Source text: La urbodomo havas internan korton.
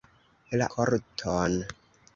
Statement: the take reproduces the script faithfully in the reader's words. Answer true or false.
false